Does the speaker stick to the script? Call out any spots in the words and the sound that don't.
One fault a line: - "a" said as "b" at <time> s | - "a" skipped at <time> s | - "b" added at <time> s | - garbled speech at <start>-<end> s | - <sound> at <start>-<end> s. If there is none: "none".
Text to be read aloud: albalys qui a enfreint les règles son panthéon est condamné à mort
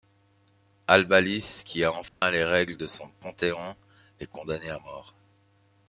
- dropout at 2.1-2.2 s
- "de" added at 2.8 s